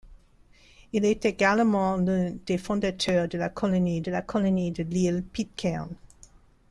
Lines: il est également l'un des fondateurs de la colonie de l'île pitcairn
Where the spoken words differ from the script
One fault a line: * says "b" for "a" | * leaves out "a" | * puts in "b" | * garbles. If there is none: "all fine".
* puts in "la colonie de"